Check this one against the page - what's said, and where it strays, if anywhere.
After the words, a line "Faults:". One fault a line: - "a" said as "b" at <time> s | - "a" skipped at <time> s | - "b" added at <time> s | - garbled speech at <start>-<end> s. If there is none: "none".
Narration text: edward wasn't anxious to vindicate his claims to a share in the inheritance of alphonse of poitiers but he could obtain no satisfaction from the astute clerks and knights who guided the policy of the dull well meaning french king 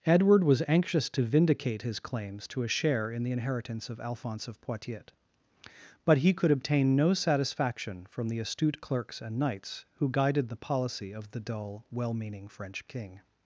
edward was anxious to vindicate his claims to a share in the inheritance of alphonse of poitiers but he could obtain no satisfaction from the astute clerks and knights who guided the policy of the dull well meaning french king
Faults:
- "wasn't" said as "was" at 0.4 s